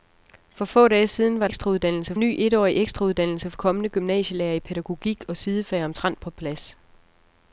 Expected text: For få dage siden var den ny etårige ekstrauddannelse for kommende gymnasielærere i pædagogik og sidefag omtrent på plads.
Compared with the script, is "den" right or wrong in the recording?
wrong